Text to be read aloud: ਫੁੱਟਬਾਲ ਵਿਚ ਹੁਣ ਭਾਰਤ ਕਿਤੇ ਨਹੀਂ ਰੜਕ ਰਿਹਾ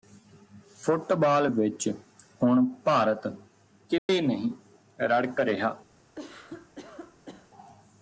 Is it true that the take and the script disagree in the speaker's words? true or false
false